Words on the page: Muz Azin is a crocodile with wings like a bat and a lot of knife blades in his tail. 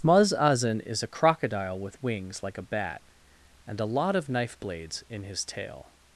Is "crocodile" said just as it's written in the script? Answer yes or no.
yes